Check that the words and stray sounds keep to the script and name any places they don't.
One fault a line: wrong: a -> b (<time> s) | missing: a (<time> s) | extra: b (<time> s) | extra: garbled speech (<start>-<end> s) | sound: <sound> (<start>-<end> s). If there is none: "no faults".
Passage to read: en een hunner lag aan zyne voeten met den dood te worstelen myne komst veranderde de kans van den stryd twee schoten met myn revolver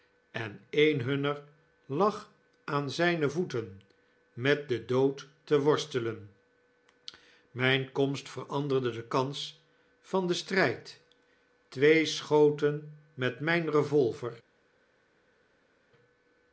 no faults